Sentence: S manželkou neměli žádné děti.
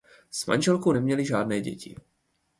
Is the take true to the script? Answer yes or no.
yes